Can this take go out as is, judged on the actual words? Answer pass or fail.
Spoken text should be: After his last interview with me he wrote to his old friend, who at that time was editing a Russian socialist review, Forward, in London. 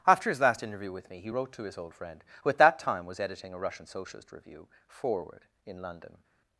pass